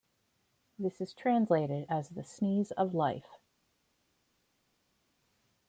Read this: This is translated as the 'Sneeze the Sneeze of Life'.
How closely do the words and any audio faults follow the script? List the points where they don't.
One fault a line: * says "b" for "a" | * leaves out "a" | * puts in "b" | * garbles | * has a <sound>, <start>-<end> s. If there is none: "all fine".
* leaves out "the Sneeze"